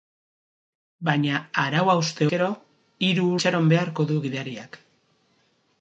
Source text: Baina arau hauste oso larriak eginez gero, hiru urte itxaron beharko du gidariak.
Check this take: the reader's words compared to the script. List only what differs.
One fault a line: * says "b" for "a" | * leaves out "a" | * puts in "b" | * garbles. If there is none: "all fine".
* leaves out "oso larriak eginez"
* leaves out "urte"